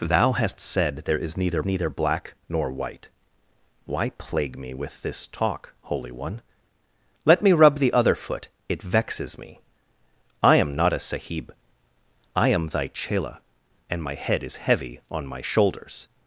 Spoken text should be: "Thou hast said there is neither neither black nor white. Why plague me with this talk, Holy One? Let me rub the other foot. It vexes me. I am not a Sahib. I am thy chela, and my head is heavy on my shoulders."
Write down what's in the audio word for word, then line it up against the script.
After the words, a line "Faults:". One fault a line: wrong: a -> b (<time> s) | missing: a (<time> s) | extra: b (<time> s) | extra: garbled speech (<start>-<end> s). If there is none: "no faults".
"Thou hast said there is neither neither black nor white. Why plague me with this talk, Holy One? Let me rub the other foot. It vexes me. I am not a Sahib. I am thy chela, and my head is heavy on my shoulders."
Faults:
no faults